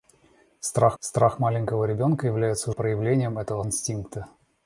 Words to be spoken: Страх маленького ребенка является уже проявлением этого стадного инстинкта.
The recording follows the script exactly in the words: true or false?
false